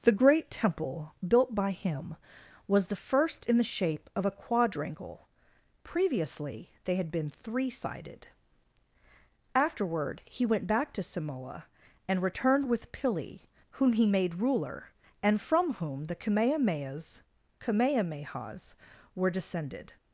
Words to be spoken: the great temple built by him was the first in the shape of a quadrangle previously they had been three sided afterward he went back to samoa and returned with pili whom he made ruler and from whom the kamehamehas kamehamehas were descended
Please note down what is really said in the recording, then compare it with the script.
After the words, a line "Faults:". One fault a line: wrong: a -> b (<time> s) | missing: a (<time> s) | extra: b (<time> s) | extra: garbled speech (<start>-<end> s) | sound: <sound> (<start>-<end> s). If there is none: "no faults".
the great temple built by him was the first in the shape of a quadrangle previously they had been three sided afterward he went back to samoa and returned with pili whom he made ruler and from whom the kamehamehas kamehamehas were descended
Faults:
no faults